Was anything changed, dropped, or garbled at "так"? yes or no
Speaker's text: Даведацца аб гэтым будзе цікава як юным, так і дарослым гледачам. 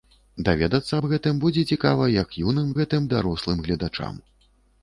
yes